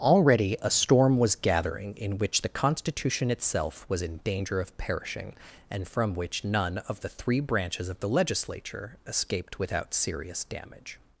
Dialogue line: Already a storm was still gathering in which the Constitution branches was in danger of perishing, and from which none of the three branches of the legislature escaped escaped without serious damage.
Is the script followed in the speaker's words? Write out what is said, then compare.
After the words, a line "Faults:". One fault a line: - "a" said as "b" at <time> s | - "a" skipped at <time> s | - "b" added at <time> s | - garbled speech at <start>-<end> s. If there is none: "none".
Already a storm was gathering in which the Constitution itself was in danger of perishing, and from which none of the three branches of the legislature escaped without serious damage.
Faults:
- "still" skipped at 1.4 s
- "branches" said as "itself" at 3.3 s
- "escaped" skipped at 9.6 s